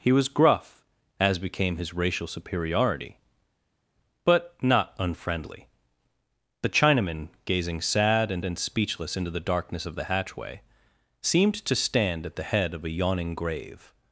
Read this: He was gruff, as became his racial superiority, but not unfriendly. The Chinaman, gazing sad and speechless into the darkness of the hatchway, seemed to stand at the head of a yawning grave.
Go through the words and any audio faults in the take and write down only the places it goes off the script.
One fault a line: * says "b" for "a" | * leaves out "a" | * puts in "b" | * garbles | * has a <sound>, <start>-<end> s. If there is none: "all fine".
* puts in "and"